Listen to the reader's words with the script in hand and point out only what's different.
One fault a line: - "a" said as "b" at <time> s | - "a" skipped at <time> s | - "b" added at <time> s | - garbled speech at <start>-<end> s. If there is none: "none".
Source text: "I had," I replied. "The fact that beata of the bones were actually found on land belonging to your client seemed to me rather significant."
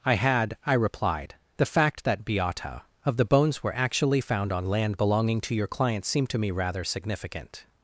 none